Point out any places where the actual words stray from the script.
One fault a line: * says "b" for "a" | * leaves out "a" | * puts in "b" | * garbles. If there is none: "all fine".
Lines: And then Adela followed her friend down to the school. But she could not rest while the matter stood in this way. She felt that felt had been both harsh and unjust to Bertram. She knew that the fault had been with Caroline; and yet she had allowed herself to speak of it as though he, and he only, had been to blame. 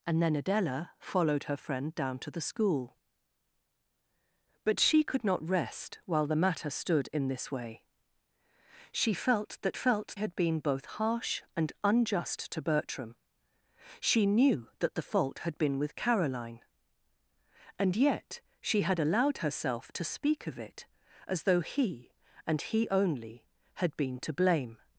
all fine